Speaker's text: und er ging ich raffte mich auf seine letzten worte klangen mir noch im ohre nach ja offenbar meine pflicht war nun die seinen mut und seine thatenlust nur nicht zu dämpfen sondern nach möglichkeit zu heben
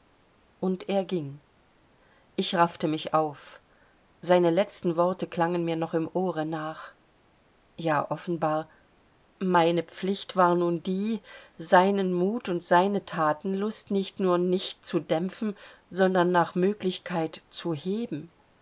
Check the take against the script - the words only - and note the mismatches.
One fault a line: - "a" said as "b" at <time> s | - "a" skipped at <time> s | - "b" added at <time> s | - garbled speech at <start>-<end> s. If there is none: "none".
- "nicht" added at 13.9 s